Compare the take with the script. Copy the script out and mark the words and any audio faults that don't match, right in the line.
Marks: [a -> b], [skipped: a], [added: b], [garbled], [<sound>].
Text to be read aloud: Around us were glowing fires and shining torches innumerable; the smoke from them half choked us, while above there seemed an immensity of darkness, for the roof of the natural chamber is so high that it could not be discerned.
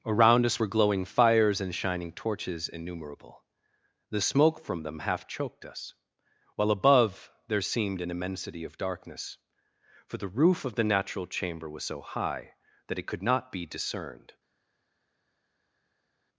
Around us were glowing fires and shining torches innumerable; the smoke from them half choked us, while above there seemed an immensity of darkness, for the roof of the natural chamber [is -> was] so high that it could not be discerned.